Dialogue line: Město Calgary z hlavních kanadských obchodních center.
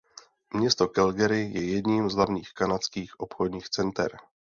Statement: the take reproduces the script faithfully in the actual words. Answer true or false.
false